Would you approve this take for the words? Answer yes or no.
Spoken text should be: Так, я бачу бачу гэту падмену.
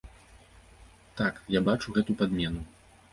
no